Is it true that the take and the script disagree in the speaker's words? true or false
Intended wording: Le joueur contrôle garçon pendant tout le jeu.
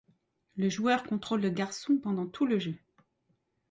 true